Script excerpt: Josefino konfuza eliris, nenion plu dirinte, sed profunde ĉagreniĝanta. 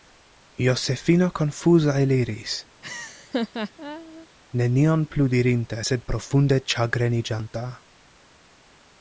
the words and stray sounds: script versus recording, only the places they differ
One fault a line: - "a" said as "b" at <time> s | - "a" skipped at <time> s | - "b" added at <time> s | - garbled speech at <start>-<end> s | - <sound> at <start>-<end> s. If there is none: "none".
- laugh at 2.8-4.3 s